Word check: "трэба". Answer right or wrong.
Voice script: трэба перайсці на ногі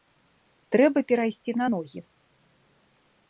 right